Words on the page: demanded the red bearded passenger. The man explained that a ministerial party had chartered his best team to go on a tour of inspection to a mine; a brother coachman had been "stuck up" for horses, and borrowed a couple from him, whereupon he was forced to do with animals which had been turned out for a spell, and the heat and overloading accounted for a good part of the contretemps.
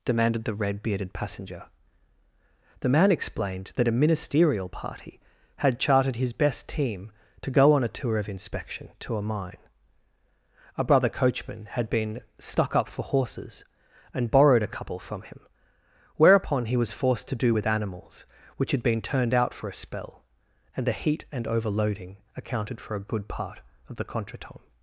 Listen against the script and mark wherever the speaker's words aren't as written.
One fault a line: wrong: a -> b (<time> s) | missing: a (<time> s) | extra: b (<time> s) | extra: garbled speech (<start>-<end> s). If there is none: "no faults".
no faults